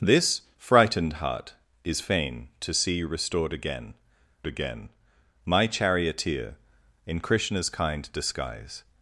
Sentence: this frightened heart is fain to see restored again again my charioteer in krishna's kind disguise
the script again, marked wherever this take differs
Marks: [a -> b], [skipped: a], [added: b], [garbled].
this frightened heart is fain to see restored again again my charioteer in krishna's kind disguise